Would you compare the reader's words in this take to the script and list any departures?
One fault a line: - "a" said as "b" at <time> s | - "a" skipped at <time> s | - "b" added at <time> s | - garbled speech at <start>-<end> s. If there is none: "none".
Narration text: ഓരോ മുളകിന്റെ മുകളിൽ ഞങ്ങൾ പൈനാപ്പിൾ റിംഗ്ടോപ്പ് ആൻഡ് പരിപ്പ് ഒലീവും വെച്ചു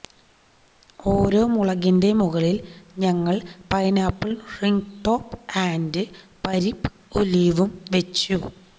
none